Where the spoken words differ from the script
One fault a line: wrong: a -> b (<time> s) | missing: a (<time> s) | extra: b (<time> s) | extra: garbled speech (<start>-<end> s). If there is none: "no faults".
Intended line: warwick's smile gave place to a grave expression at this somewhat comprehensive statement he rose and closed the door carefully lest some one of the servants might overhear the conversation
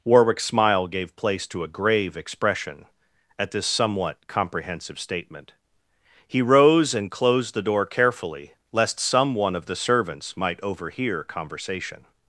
missing: the (11.2 s)